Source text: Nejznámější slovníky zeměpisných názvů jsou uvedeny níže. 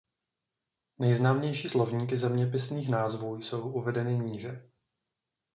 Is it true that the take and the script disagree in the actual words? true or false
false